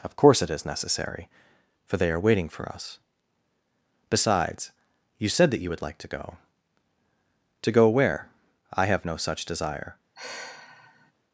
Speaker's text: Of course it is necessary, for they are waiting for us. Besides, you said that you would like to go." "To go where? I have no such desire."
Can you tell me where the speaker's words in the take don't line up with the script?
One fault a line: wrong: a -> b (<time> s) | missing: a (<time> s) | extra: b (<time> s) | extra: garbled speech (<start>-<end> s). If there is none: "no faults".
no faults